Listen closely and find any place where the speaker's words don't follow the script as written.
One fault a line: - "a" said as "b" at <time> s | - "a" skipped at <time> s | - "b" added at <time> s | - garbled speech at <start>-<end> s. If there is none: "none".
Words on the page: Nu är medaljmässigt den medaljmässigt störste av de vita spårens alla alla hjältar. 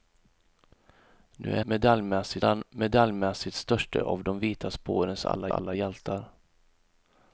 none